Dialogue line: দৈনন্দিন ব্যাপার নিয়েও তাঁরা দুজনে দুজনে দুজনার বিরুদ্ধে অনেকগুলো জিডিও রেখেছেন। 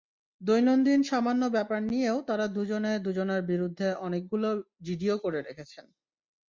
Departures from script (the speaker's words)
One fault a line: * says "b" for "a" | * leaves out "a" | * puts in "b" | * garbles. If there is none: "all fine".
* puts in "সামান্য"
* leaves out "দুজনে"
* puts in "করে"